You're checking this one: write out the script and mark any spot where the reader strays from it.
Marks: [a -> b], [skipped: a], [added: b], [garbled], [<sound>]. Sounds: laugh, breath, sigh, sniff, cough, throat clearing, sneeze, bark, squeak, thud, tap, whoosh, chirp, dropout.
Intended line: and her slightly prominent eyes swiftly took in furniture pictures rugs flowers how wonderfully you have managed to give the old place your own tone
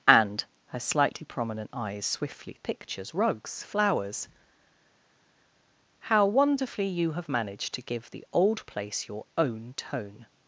and her slightly prominent eyes swiftly [skipped: took in furniture] pictures rugs flowers how wonderfully you have managed to give the old place your own tone